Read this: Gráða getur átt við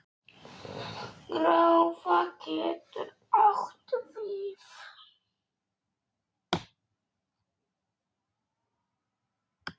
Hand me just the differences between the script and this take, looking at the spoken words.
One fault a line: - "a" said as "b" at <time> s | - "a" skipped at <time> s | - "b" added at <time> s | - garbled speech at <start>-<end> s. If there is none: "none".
none